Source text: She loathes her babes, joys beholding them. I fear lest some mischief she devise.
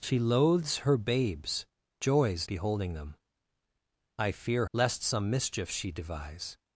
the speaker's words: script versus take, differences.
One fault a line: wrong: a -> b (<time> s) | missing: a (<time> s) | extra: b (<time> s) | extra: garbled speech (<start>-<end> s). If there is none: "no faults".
no faults